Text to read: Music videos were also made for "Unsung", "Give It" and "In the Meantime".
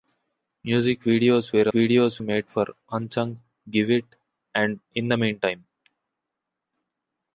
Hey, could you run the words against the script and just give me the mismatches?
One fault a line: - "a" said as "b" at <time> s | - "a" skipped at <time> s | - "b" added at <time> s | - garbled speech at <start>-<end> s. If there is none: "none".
- "also" said as "videos" at 1.7 s